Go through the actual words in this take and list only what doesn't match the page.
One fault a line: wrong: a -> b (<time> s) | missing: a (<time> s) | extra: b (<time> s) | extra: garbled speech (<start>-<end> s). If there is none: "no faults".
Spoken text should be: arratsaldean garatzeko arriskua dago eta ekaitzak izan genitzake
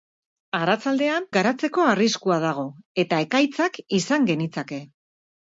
no faults